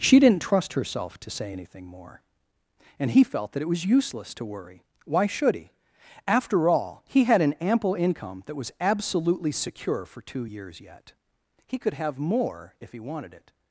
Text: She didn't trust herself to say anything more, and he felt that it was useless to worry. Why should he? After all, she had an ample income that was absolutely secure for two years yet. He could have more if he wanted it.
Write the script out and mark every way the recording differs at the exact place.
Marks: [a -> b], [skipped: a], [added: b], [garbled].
She didn't trust herself to say anything more, and he felt that it was useless to worry. Why should he? After all, [she -> he] had an ample income that was absolutely secure for two years yet. He could have more if he wanted it.